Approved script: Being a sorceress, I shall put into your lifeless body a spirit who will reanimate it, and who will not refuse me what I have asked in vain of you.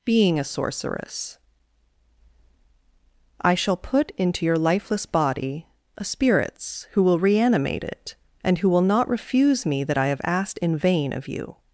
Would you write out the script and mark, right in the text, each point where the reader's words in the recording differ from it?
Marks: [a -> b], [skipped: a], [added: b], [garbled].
Being a sorceress, I shall put into your lifeless body a [spirit -> spirits] who will reanimate it, and who will not refuse me [what -> that] I have asked in vain of you.